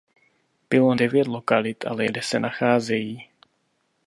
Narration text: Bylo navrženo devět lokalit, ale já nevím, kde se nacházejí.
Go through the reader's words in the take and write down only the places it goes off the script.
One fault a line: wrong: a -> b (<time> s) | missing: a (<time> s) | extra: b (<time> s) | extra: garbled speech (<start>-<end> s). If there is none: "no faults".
missing: navrženo (0.9 s)
missing: já nevím (2.1 s)